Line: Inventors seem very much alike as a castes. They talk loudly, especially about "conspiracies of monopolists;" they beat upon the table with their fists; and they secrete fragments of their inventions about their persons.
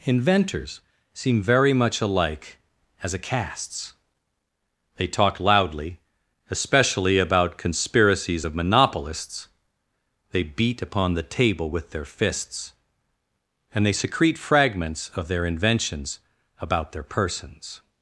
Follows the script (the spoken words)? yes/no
yes